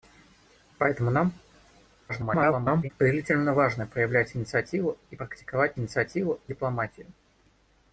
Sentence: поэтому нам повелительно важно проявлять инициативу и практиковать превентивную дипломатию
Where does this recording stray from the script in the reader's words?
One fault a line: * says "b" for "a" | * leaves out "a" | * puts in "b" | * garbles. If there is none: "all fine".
* garbles
* says "инициативу" for "превентивную"